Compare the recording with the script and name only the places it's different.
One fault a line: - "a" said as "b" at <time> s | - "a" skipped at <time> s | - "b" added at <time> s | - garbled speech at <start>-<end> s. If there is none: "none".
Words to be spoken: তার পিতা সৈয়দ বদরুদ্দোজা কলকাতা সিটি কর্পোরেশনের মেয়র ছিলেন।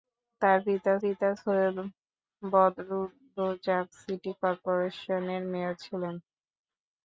- "পিতা" added at 1.0 s
- "কলকাতা" skipped at 3.8 s